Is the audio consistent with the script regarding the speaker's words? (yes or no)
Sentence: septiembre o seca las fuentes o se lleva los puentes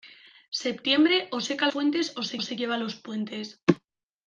no